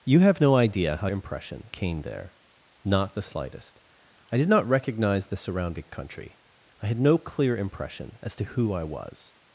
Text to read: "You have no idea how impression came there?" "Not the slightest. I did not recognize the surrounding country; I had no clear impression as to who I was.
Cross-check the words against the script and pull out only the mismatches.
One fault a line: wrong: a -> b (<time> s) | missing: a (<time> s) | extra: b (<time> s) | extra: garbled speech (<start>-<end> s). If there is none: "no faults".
no faults